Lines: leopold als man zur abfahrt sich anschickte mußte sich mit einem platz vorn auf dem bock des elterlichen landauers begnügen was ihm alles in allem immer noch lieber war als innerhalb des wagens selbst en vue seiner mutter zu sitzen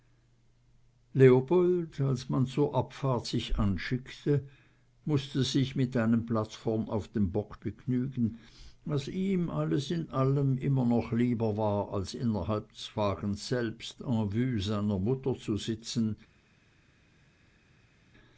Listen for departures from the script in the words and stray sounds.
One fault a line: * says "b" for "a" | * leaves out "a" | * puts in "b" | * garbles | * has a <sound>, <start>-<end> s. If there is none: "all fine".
* leaves out "des elterlichen landauers"